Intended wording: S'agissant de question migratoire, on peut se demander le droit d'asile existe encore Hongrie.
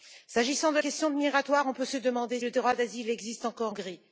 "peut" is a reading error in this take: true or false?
false